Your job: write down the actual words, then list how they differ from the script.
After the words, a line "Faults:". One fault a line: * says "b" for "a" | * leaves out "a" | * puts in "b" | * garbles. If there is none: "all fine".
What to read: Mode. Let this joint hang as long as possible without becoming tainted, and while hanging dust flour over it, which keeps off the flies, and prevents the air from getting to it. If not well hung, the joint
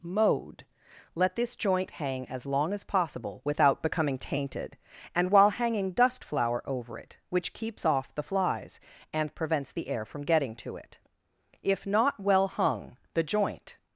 Mode. Let this joint hang as long as possible without becoming tainted, and while hanging dust flour over it, which keeps off the flies, and prevents the air from getting to it. If not well hung, the joint
Faults:
all fine